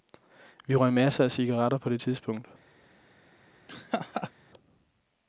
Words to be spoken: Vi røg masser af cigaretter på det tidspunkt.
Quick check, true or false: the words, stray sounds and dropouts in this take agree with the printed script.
false